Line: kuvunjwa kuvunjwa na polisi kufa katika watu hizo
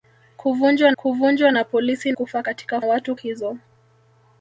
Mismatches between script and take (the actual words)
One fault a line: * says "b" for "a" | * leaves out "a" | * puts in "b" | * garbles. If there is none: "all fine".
all fine